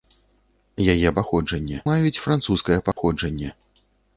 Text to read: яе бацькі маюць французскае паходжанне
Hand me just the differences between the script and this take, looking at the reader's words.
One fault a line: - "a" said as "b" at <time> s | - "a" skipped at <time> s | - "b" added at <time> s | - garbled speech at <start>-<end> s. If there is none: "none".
- "бацькі" said as "паходжанне" at 1.2 s